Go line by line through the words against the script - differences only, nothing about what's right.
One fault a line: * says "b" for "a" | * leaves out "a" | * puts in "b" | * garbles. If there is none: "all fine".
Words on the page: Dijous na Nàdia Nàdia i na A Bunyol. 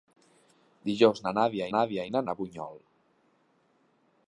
all fine